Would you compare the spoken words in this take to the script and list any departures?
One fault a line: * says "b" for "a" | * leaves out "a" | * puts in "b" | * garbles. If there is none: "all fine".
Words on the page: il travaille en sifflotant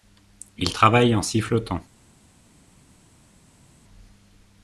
all fine